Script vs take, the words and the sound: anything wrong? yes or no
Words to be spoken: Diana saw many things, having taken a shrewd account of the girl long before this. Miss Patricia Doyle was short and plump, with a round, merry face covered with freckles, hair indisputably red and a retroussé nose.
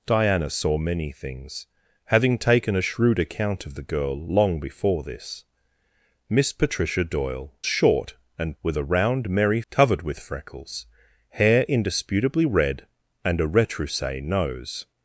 yes